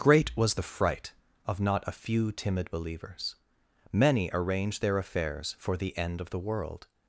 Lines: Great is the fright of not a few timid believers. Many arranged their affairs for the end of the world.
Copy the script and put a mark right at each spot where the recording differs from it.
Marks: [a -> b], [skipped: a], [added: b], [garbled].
Great [is -> was] the fright of not a few timid believers. Many arranged their affairs for the end of the world.